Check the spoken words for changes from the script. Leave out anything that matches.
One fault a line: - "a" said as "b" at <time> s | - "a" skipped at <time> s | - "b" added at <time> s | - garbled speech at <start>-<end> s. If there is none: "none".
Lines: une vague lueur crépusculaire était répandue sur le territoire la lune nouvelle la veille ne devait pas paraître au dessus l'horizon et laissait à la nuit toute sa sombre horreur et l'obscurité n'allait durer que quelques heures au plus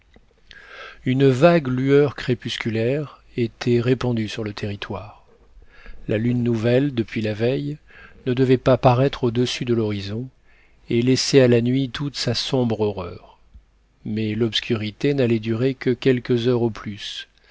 - "depuis" added at 7.0 s
- "de" added at 9.6 s
- "et" said as "mais" at 14.0 s